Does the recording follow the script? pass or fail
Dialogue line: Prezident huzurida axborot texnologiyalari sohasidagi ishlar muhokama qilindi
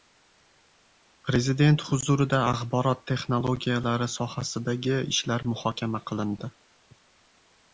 pass